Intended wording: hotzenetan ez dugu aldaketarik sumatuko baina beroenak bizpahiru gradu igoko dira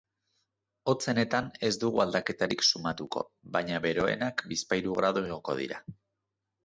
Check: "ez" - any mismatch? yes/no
no